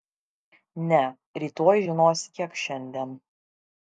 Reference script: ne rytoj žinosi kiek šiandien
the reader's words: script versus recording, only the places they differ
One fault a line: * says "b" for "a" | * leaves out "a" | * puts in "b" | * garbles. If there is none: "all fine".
all fine